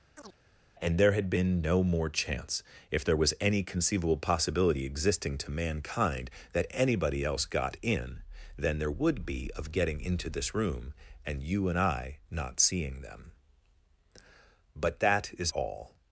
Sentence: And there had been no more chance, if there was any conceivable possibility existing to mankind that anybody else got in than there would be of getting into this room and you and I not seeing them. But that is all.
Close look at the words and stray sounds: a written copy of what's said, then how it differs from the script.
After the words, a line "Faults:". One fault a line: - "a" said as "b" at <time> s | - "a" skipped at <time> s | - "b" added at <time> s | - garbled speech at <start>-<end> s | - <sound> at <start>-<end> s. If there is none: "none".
And there had been no more chance, if there was any conceivable possibility existing to mankind that anybody else got in than there would be of getting into this room and you and I not seeing them. But that is all.
Faults:
- chirp at 0.2-0.4 s